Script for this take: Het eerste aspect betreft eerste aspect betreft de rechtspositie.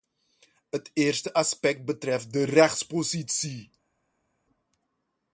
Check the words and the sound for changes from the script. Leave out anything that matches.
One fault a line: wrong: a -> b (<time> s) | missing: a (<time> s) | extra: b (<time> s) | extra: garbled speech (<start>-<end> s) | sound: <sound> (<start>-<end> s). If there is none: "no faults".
missing: eerste aspect betreft (2.3 s)